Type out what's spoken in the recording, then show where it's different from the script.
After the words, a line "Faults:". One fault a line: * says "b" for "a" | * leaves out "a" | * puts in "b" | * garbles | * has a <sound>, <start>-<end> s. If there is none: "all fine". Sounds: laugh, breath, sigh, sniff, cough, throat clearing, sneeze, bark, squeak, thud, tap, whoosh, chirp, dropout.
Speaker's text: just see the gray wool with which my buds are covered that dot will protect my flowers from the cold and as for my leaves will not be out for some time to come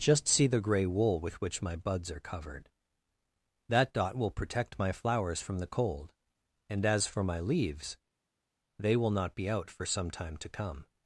just see the gray wool with which my buds are covered that dot will protect my flowers from the cold and as for my leaves they will not be out for some time to come
Faults:
* puts in "they"